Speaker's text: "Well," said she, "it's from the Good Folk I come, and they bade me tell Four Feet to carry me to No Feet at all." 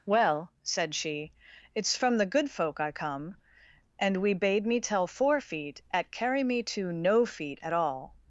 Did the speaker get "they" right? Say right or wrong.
wrong